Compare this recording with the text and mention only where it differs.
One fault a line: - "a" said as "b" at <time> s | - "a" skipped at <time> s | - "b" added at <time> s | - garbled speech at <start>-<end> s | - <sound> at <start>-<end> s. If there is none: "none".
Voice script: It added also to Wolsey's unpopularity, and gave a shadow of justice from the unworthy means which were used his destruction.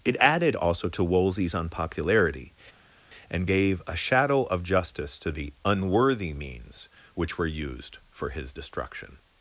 - "from" said as "to" at 5.2 s
- "for" added at 8.1 s